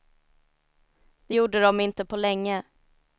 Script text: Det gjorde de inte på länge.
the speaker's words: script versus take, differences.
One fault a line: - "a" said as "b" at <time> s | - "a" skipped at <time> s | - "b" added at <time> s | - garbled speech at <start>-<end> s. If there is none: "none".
none